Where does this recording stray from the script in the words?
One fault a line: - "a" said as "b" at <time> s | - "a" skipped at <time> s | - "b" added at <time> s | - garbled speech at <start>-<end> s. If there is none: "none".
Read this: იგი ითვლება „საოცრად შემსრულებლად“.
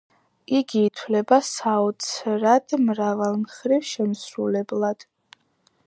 - "მრავალმხრივ" added at 2.8 s